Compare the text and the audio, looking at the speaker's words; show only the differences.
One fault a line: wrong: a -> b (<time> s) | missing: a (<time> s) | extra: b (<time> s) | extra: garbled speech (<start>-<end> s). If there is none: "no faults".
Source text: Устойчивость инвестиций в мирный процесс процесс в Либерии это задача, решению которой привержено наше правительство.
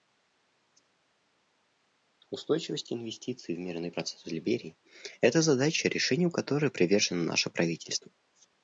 missing: процесс (4.2 s)